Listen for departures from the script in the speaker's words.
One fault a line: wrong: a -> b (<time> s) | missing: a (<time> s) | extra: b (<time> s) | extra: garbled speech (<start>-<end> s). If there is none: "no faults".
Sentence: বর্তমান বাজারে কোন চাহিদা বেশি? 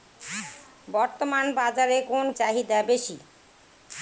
no faults